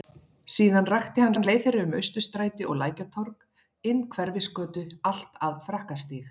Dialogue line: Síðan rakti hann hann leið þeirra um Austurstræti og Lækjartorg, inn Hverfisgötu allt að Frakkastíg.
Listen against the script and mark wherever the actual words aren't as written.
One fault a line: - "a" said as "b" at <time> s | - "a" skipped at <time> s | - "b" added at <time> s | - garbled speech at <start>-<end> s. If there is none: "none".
none